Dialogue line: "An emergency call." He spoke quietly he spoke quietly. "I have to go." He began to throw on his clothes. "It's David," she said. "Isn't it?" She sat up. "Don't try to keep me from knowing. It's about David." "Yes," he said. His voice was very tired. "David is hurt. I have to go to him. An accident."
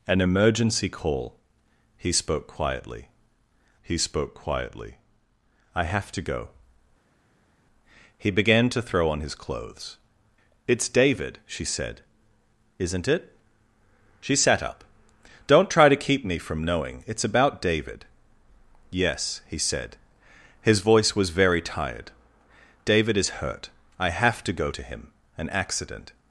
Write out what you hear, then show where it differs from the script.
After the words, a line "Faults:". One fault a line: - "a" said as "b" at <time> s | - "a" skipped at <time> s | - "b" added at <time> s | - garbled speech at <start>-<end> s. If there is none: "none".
"An emergency call." He spoke quietly he spoke quietly. "I have to go." He began to throw on his clothes. "It's David," she said. "Isn't it?" She sat up. "Don't try to keep me from knowing. It's about David." "Yes," he said. His voice was very tired. "David is hurt. I have to go to him. An accident."
Faults:
none